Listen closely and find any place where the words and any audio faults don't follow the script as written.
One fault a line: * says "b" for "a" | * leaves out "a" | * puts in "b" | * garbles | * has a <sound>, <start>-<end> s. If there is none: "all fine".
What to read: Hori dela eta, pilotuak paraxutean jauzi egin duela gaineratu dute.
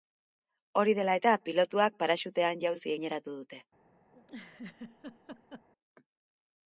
* leaves out "egin duela"
* has a laugh, 4.1-5.7 s